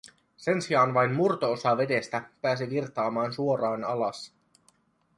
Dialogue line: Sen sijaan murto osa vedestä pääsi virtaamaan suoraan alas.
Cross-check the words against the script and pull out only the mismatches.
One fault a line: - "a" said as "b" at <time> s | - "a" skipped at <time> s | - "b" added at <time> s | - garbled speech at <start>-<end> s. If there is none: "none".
- "vain" added at 0.9 s